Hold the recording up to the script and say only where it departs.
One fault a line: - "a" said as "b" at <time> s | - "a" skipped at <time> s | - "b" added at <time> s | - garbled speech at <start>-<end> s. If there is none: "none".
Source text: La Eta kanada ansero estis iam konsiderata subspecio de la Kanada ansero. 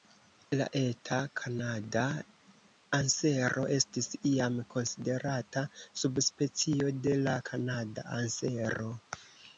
none